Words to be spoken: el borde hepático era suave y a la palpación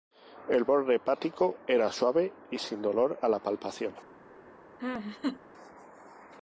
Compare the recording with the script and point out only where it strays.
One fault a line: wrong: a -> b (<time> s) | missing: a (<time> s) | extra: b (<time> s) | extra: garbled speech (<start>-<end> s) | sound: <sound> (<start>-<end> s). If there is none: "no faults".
extra: sin dolor (2.5 s)
sound: laugh (4.8-5.4 s)